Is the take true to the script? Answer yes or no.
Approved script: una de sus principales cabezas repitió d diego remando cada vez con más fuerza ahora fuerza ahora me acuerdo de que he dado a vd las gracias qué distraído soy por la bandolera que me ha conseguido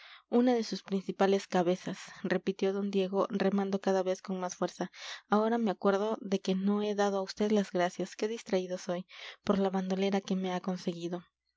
no